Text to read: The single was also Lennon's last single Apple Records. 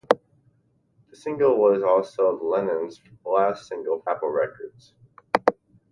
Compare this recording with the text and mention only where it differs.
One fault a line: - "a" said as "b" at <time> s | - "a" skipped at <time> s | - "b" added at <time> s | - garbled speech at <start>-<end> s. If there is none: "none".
none